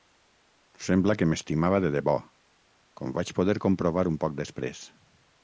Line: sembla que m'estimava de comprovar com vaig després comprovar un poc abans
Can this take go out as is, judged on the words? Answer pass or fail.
fail